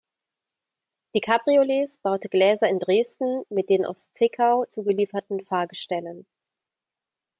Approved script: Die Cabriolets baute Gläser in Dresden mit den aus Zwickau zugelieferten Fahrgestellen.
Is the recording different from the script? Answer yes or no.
no